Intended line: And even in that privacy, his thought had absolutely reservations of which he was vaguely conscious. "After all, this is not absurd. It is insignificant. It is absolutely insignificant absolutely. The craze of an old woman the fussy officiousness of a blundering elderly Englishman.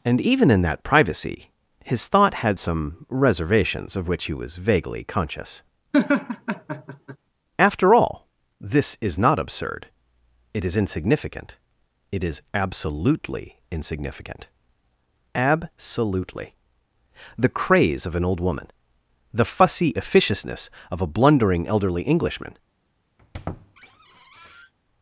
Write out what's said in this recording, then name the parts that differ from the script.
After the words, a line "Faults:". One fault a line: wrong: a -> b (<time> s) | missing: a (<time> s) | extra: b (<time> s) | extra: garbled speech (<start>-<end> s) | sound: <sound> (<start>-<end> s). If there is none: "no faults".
And even in that privacy, his thought had some reservations of which he was vaguely conscious. "After all, this is not absurd. It is insignificant. It is absolutely insignificant absolutely. The craze of an old woman the fussy officiousness of a blundering elderly Englishman.
Faults:
wrong: absolutely -> some (2.6 s)
sound: laugh (5.9-7.2 s)
sound: squeak (23.2-24.7 s)